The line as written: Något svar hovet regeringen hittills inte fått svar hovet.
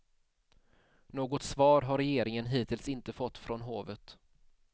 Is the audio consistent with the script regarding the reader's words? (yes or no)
no